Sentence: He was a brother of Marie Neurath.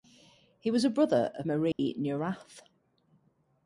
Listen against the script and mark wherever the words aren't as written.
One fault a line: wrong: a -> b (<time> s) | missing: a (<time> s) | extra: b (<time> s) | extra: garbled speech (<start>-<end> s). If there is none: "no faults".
no faults